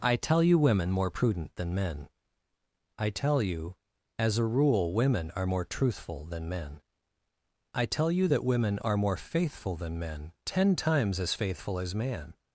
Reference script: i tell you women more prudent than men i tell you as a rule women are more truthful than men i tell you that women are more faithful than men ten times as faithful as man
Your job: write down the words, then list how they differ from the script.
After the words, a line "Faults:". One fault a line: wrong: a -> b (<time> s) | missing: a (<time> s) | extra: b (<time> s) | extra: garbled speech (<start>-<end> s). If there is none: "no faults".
i tell you women more prudent than men i tell you as a rule women are more truthful than men i tell you that women are more faithful than men ten times as faithful as man
Faults:
no faults